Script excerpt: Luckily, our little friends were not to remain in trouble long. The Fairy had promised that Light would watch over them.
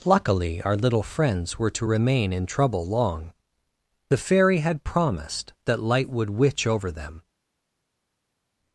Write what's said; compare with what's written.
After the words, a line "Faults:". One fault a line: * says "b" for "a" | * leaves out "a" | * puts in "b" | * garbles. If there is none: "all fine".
Luckily, our little friends were to remain in trouble long. The Fairy had promised that Light would witch over them.
Faults:
* leaves out "not"
* says "witch" for "watch"